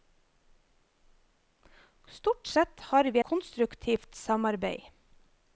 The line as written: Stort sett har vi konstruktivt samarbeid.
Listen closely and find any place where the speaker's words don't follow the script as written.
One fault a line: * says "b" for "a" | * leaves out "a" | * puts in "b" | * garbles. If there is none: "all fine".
all fine